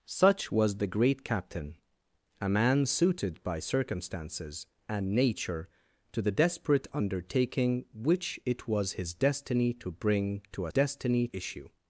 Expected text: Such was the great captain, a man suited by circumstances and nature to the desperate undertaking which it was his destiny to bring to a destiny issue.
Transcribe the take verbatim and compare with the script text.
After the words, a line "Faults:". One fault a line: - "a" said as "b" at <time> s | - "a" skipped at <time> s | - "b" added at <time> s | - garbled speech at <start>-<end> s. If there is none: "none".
Such was the great captain, a man suited by circumstances and nature to the desperate undertaking which it was his destiny to bring to a destiny issue.
Faults:
none